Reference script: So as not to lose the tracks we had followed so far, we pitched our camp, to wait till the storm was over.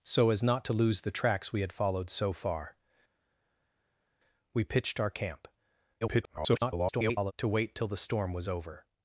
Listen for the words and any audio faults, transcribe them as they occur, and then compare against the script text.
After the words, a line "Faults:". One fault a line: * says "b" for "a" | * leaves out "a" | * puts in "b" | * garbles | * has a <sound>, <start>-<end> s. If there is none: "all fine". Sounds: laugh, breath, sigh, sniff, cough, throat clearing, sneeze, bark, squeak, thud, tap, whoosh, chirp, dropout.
So as not to lose the tracks we had followed so far, we pitched our camp, [garbled] to wait till the storm was over.
Faults:
* garbles